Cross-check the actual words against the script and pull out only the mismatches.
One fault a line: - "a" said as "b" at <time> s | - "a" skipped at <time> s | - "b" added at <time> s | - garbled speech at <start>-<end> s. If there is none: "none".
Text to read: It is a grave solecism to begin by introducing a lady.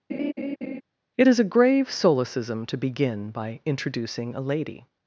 none